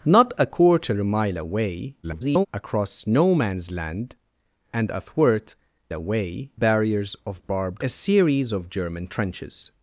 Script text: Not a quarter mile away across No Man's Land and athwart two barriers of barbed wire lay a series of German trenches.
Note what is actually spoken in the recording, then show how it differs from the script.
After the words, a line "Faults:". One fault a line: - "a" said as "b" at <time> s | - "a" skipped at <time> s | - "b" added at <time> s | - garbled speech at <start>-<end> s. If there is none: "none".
Not a quarter mile away [garbled] across No Man's Land and athwart away barriers of barbed a series of German trenches.
Faults:
- garbled speech at 2.0-2.5 s
- "two" said as "away" at 5.9 s
- "wire lay" skipped at 7.8 s